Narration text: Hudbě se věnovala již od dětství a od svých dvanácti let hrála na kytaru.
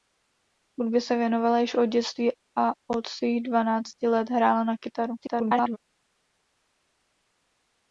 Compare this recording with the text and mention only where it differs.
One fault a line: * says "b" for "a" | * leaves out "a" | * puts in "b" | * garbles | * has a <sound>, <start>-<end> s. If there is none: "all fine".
* garbles